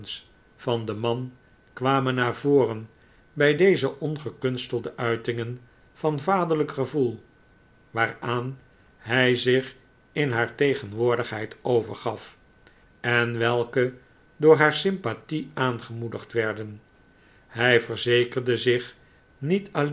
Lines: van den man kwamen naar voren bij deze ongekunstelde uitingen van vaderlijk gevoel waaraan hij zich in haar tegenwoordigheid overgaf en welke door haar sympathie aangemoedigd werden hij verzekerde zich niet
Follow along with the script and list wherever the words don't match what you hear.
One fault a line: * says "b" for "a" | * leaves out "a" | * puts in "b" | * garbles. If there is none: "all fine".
all fine